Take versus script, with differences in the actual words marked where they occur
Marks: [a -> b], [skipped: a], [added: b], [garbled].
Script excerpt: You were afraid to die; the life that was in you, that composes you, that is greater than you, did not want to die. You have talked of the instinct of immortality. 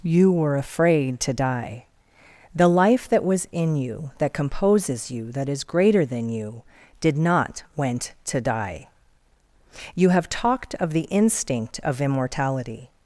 You were afraid to die; the life that was in you, that composes you, that is greater than you, did not [want -> went] to die. You have talked of the instinct of immortality.